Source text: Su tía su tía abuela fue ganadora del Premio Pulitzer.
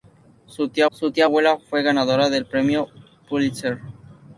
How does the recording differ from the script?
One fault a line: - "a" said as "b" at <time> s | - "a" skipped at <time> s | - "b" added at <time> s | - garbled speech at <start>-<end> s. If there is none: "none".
none